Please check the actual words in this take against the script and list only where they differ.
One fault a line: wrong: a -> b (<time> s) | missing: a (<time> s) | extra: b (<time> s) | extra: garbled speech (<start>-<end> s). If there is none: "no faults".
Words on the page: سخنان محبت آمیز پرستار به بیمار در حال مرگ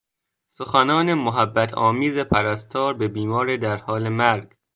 no faults